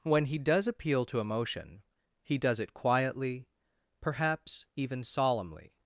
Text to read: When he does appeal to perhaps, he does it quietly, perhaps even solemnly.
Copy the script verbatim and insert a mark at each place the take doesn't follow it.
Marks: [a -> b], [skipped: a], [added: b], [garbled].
When he does appeal to [perhaps, -> emotion] he does it quietly, perhaps even solemnly.